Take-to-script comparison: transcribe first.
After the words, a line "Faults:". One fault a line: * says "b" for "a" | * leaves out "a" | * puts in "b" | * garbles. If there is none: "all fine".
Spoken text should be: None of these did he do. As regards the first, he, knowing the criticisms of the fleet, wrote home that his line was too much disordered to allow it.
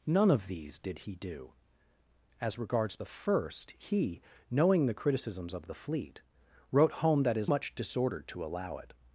None of these did he do. As regards the first, he, knowing the criticisms of the fleet, wrote home that his much disordered to allow it.
Faults:
* leaves out "line was too"